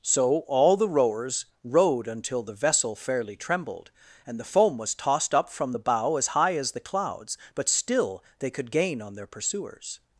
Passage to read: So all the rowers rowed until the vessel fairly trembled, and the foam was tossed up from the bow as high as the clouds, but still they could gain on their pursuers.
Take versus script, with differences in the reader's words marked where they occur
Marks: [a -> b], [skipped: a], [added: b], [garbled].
So all the rowers rowed until the vessel fairly trembled, and the foam was tossed up from the bow as high as the clouds, but still they could gain on their pursuers.